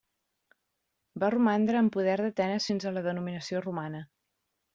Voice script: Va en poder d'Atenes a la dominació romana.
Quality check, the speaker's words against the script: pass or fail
fail